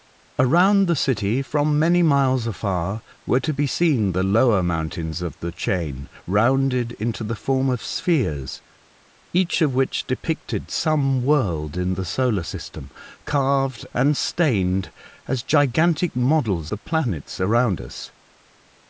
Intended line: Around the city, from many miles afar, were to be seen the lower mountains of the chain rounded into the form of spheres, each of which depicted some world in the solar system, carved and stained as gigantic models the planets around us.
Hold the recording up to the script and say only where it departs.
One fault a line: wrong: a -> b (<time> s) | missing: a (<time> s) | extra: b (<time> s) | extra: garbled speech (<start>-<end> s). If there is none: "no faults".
no faults